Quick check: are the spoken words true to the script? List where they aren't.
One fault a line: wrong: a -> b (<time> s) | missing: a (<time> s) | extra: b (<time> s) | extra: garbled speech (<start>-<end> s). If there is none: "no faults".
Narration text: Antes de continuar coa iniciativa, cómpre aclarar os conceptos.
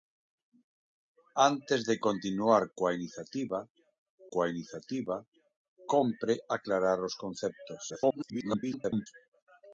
extra: coa iniciativa (4.3 s)
extra: garbled speech (7.9-9.1 s)